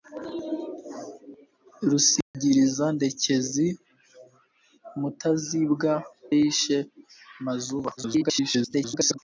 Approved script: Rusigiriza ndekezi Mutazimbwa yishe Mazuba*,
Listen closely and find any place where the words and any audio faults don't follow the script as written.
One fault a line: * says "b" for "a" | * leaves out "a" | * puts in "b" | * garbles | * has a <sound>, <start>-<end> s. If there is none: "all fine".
* has a dropout, 2.2-2.3 s
* leaves out "Mutazimbwa"
* garbles